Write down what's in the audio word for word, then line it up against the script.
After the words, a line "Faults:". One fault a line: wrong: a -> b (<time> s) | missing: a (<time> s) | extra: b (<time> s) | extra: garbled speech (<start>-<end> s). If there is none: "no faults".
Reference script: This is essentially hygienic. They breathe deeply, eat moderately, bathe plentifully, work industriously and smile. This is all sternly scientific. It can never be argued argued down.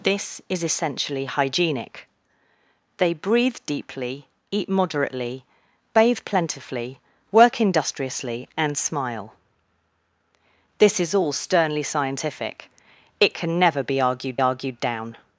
This is essentially hygienic. They breathe deeply, eat moderately, bathe plentifully, work industriously and smile. This is all sternly scientific. It can never be argued argued down.
Faults:
no faults